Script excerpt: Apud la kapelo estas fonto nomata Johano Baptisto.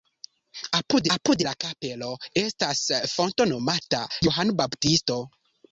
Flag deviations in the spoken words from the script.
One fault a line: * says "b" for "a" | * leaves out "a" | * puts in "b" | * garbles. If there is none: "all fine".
* puts in "apud"